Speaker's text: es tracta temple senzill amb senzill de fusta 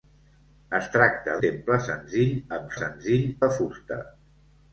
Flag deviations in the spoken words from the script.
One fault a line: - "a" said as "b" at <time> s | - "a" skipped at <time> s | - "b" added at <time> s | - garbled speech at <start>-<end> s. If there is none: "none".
none